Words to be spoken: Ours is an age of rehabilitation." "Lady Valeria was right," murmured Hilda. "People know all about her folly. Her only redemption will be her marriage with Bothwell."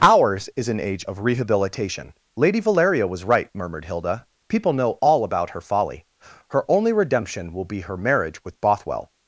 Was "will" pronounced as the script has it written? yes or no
yes